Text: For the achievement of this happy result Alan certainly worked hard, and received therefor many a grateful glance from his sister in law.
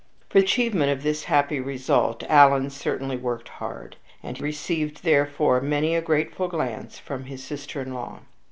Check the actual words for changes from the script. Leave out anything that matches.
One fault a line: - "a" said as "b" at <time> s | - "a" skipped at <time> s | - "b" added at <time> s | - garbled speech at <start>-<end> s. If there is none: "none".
- "the" skipped at 0.4 s